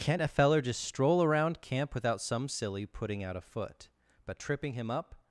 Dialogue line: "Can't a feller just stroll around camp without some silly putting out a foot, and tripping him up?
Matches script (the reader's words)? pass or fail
fail